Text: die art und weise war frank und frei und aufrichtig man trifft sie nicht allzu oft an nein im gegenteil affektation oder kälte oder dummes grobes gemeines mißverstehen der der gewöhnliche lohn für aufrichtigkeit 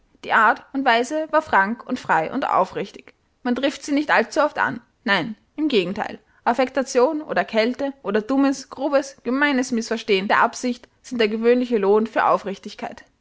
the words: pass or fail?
fail